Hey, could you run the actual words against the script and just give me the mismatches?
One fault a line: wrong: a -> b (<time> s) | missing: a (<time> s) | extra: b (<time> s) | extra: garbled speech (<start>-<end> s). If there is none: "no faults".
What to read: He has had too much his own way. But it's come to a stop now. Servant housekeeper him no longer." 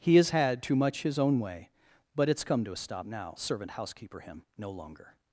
no faults